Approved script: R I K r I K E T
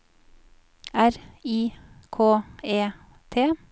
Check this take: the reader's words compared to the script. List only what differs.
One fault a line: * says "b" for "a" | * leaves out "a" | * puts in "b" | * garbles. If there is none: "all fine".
* leaves out "r I K"